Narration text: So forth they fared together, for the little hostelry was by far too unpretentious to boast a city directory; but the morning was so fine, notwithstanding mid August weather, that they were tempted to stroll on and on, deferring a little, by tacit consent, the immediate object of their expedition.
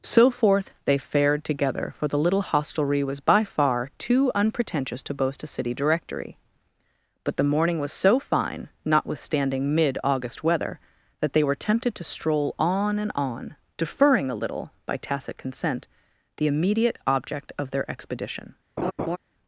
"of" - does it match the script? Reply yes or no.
yes